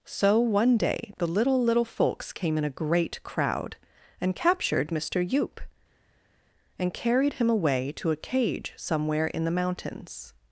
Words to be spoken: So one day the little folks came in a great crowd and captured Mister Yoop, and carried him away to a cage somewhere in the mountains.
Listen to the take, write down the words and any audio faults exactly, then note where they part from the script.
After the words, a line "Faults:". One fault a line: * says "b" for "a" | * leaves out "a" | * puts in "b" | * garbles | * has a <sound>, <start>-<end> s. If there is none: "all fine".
So one day the little little folks came in a great crowd and captured Mister Yoop, and carried him away to a cage somewhere in the mountains.
Faults:
* puts in "little"